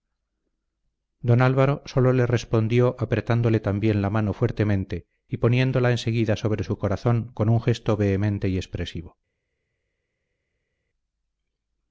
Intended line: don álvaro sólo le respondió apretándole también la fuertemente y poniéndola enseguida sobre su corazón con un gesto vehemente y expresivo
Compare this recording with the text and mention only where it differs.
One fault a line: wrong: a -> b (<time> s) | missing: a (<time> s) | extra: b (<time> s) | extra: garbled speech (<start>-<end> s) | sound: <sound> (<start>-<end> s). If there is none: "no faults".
extra: mano (4.1 s)